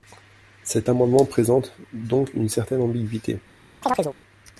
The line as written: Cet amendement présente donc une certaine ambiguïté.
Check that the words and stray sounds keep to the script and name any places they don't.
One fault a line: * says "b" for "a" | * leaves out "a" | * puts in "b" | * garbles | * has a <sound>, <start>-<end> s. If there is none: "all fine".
* has a chirp, 3.8-4.2 s